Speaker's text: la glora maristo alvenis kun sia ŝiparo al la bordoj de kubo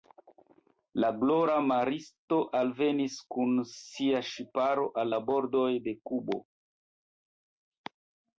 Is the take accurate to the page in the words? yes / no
yes